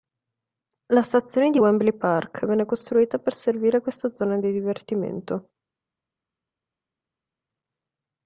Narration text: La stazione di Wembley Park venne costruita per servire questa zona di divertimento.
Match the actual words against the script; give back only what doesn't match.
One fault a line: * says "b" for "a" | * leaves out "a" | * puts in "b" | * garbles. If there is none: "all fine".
all fine